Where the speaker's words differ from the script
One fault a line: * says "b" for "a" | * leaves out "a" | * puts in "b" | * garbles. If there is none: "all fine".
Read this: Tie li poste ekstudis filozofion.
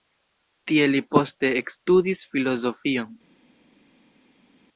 all fine